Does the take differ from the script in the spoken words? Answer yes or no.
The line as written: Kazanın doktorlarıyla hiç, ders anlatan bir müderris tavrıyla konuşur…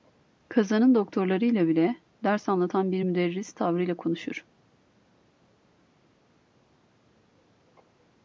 yes